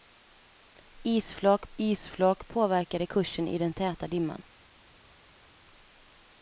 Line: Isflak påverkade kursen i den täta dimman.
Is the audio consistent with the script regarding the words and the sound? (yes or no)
no